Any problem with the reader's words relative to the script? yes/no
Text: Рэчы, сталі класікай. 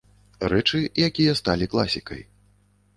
yes